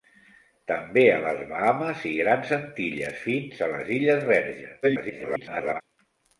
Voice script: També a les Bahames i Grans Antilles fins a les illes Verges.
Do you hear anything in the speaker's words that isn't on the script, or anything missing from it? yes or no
yes